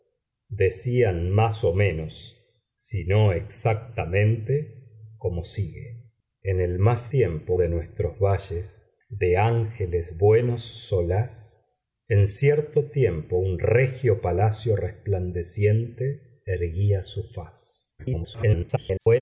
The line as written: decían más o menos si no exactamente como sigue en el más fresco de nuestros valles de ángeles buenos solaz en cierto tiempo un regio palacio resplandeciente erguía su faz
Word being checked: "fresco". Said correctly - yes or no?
no